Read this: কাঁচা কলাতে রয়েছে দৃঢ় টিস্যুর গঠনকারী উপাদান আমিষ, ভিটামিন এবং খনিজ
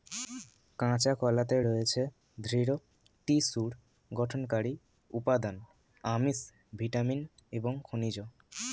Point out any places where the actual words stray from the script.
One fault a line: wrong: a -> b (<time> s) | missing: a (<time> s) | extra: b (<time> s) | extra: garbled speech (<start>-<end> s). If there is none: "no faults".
no faults